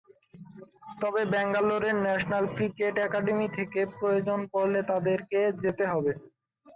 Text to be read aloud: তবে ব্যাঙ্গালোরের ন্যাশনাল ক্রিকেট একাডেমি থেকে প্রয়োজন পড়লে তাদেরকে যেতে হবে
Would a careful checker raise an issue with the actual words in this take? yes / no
no